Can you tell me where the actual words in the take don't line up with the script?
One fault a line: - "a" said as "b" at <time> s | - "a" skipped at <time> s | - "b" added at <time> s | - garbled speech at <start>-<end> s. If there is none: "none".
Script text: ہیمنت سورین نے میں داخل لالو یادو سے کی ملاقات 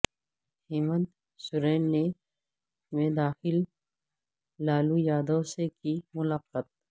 none